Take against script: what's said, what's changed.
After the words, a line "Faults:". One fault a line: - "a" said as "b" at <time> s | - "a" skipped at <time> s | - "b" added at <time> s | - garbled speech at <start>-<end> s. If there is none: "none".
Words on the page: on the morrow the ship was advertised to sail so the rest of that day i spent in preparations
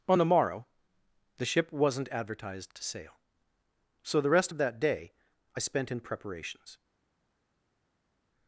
on the morrow the ship wasn't advertised to sail so the rest of that day i spent in preparations
Faults:
- "was" said as "wasn't" at 1.7 s